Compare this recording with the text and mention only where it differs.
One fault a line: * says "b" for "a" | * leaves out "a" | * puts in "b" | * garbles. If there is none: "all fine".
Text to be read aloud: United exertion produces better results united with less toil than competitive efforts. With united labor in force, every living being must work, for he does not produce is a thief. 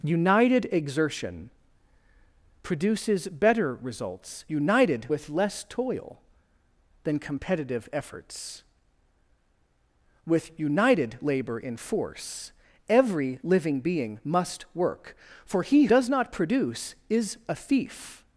all fine